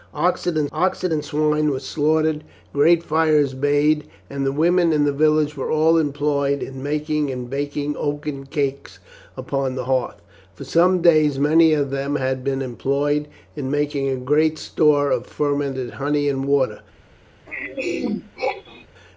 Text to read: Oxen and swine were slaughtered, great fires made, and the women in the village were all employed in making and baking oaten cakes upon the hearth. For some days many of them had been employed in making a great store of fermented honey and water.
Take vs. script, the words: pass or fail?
fail